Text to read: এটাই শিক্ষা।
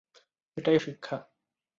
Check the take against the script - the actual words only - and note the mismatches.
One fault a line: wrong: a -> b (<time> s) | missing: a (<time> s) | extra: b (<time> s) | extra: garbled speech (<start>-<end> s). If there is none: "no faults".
no faults